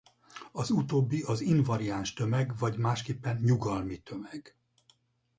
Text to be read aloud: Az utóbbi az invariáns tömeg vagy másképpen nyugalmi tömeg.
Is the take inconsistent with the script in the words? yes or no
no